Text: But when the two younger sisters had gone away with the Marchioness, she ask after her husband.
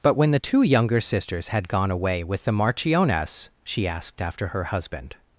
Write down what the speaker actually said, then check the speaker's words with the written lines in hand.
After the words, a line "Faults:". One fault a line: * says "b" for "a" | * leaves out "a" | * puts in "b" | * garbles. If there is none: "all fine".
But when the two younger sisters had gone away with the Marchioness, she asked after her husband.
Faults:
* says "asked" for "ask"